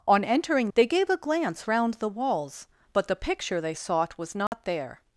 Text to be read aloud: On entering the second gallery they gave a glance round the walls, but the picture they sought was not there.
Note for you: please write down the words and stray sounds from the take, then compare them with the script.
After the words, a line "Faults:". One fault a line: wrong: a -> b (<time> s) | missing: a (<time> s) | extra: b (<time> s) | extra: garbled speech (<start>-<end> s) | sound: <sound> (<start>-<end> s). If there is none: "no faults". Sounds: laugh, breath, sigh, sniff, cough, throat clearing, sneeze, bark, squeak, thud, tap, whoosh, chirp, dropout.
On entering they gave a glance round the walls, but the picture they sought was not there.
Faults:
missing: the second gallery (0.7 s)
sound: dropout (4.5-4.5 s)